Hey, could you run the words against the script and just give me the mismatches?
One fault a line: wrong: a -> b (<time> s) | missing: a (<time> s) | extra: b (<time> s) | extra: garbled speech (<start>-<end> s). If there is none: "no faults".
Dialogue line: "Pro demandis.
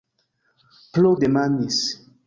no faults